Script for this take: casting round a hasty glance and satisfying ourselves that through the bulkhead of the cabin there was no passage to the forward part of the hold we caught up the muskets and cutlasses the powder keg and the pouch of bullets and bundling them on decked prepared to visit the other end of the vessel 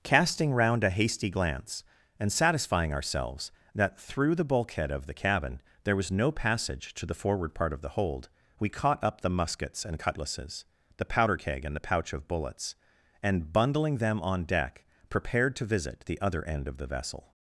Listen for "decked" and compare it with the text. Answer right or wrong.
wrong